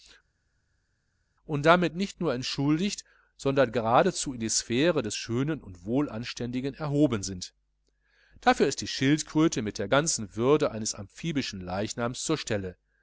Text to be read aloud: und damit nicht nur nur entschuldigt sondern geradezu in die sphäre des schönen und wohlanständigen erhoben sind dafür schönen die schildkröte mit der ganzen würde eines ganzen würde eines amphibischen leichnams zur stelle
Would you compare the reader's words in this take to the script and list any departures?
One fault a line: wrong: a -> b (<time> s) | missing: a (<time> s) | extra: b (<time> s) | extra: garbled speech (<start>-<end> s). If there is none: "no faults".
missing: nur (2.3 s)
wrong: schönen -> ist (8.7 s)
missing: ganzen würde eines (10.9 s)